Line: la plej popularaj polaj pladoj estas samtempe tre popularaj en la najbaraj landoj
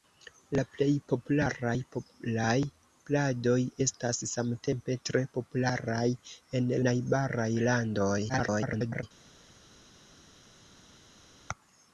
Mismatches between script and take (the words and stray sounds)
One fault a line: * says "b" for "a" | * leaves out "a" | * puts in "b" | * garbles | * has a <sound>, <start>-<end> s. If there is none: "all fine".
* leaves out "la"
* garbles